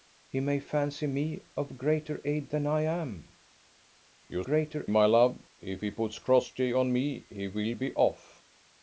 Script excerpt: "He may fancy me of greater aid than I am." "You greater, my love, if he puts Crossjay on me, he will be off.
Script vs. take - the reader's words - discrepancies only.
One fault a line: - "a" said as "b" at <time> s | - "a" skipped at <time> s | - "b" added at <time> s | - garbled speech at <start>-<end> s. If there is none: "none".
none